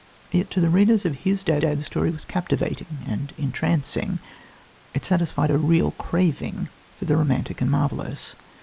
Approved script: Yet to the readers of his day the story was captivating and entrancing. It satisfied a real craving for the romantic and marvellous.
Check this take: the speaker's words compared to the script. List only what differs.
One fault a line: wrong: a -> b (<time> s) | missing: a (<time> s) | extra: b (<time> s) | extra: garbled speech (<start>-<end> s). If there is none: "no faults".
extra: day (1.6 s)